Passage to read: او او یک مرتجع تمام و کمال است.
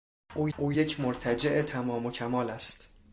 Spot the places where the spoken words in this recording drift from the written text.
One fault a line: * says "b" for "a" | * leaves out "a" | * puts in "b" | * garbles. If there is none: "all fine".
all fine